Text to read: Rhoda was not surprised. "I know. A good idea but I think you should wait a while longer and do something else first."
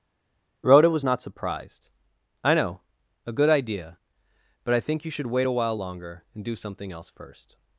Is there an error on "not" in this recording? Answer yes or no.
no